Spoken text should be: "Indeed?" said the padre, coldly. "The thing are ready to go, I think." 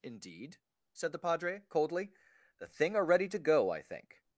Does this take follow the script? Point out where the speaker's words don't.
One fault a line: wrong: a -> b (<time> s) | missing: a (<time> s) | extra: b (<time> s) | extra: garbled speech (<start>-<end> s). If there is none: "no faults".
no faults